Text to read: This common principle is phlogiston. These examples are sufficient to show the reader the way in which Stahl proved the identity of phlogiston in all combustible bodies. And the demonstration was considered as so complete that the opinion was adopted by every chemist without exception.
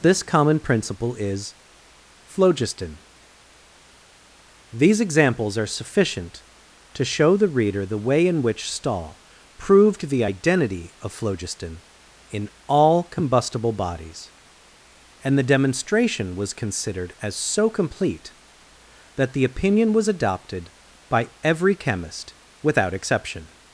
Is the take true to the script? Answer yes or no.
yes